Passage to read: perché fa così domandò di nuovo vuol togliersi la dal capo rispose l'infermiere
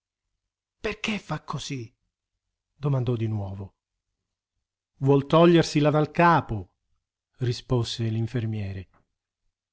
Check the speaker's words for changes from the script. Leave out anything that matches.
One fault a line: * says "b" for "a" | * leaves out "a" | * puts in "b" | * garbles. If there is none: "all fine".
all fine